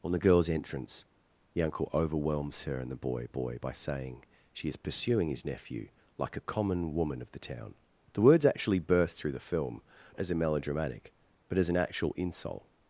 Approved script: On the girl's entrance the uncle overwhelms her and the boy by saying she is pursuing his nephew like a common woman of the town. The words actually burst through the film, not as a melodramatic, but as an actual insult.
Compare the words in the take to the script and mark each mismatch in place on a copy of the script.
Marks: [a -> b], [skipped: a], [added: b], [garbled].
On the girl's entrance the uncle overwhelms her and the boy [added: boy] by saying she is pursuing his nephew like a common woman of the town. The words actually burst through the film, [skipped: not] as a melodramatic, but as an actual insult.